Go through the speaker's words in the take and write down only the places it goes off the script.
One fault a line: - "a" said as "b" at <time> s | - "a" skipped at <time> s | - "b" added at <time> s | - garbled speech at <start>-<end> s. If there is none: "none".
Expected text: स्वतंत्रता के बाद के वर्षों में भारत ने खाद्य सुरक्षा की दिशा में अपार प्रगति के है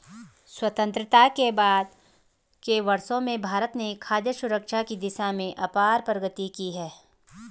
- "के" said as "की" at 6.5 s